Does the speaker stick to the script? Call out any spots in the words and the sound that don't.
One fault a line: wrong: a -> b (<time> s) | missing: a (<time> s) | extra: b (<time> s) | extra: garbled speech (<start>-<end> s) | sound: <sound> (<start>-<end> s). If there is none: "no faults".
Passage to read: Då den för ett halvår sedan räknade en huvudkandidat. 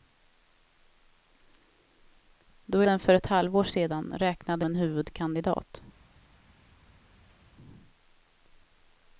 no faults